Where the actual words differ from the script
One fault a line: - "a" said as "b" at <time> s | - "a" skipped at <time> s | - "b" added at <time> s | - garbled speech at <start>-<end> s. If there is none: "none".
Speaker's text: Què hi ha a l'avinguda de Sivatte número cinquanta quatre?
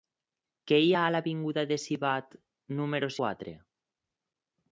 - "cinquanta" skipped at 3.1 s